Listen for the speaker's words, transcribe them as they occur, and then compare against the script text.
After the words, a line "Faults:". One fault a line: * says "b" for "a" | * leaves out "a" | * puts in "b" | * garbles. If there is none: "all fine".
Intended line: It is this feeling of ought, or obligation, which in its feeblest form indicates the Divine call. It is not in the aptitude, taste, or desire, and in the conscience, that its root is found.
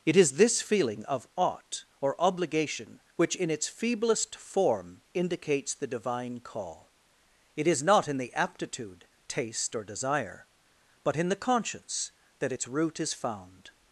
It is this feeling of ought, or obligation, which in its feeblest form indicates the Divine call. It is not in the aptitude, taste, or desire, but in the conscience, that its root is found.
Faults:
* says "but" for "and"